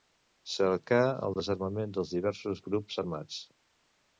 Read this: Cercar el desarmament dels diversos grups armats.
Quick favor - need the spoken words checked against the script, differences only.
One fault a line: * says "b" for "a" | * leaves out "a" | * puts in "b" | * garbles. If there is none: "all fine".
all fine